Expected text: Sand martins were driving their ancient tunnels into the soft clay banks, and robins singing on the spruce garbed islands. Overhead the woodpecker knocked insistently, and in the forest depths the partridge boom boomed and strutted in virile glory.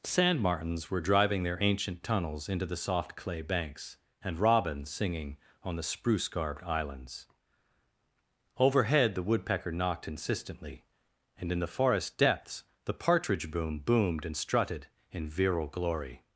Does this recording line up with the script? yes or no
yes